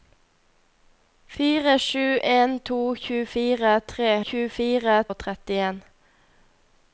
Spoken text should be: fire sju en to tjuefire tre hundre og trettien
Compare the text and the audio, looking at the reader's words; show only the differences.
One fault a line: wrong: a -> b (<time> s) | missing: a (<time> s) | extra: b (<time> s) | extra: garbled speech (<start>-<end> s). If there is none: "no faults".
wrong: hundre -> tjuefire (4.3 s)